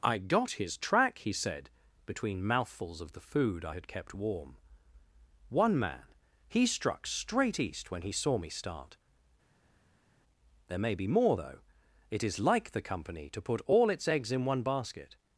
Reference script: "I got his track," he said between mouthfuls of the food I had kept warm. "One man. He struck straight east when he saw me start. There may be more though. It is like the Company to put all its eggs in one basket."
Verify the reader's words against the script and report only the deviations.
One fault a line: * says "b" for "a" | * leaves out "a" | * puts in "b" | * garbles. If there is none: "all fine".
all fine